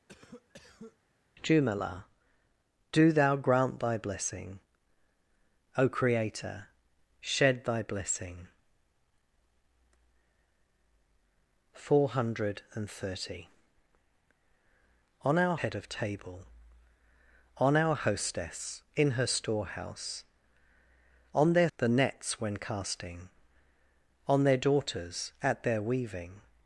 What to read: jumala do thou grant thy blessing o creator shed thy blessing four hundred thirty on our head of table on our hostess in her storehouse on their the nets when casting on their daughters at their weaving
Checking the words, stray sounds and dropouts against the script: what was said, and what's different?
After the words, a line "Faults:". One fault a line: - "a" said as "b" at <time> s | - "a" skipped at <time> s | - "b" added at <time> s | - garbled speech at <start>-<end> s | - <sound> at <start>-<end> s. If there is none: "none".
jumala do thou grant thy blessing o creator shed thy blessing four hundred thirty on our head of table on our hostess in her storehouse on their the nets when casting on their daughters at their weaving
Faults:
- cough at 0.1-1.0 s